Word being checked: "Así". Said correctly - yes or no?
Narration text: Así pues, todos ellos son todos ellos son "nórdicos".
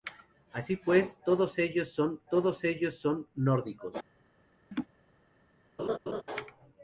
yes